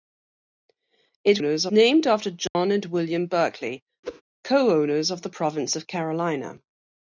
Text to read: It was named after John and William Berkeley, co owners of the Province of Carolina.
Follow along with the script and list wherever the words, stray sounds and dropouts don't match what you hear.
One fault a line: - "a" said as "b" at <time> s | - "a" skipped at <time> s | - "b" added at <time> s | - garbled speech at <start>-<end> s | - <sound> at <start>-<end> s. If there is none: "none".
- "was" said as "owners" at 1.4 s
- dropout at 2.5-2.5 s
- whoosh at 4.0-4.2 s